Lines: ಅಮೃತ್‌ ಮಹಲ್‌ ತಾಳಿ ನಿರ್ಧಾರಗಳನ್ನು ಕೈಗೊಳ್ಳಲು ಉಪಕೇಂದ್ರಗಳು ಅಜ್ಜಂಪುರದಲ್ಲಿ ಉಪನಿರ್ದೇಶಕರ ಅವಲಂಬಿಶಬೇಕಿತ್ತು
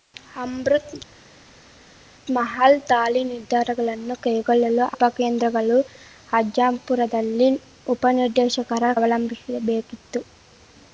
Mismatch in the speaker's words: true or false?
false